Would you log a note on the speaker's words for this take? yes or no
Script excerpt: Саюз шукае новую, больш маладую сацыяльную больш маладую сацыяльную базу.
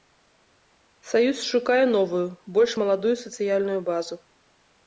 yes